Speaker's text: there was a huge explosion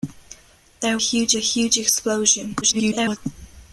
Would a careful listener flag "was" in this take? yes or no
yes